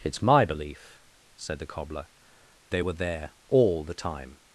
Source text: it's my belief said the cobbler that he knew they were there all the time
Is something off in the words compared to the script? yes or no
yes